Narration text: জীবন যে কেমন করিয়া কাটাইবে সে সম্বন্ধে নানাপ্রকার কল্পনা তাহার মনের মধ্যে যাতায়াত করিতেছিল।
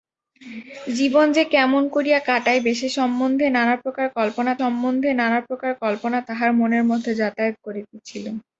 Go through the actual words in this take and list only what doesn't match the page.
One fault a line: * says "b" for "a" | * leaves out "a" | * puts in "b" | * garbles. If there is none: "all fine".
* puts in "সম্বন্ধে নানাপ্রকার কল্পনা"